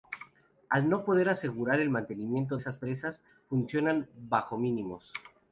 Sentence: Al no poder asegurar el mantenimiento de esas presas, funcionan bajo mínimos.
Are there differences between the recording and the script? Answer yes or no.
yes